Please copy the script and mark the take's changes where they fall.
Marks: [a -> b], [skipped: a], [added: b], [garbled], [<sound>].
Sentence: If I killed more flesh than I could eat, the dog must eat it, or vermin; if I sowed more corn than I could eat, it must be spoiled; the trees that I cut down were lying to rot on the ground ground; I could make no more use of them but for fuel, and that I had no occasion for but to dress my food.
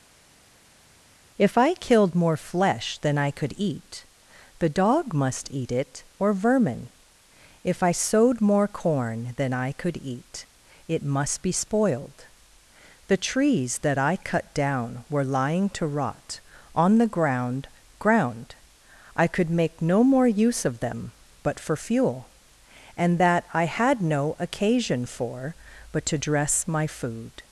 If I killed more flesh than I could eat, the dog must eat it, or vermin; if I sowed more corn than I could eat, it must be spoiled; the trees that I cut down were lying to rot on the ground ground; I could make no more use of them but for fuel, and that I had no occasion for but to dress my food.